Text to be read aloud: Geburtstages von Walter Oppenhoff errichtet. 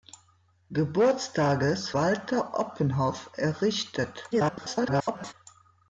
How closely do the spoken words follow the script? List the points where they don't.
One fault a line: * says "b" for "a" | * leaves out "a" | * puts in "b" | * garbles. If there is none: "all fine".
* leaves out "von"
* garbles